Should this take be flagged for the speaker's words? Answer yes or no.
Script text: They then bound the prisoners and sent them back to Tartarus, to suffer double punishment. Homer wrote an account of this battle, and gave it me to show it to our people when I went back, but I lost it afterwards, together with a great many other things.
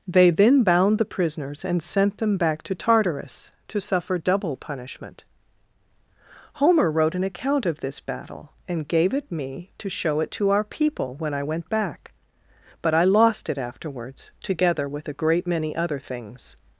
no